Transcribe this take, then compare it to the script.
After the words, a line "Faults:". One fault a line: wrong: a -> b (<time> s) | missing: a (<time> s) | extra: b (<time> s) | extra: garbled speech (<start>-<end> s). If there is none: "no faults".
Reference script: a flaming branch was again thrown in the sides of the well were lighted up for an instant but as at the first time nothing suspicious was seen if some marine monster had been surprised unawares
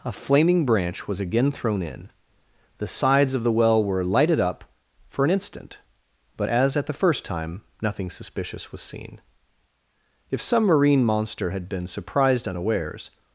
a flaming branch was again thrown in the sides of the well were lighted up for an instant but as at the first time nothing suspicious was seen if some marine monster had been surprised unawares
Faults:
no faults